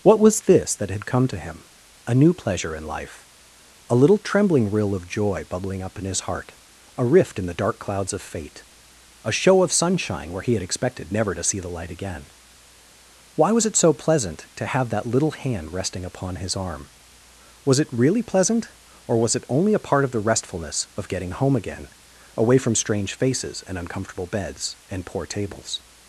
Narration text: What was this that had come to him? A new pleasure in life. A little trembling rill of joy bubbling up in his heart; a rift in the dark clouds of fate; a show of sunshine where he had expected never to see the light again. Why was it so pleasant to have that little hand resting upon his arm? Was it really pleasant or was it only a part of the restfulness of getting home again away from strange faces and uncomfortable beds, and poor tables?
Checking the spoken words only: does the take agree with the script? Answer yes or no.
yes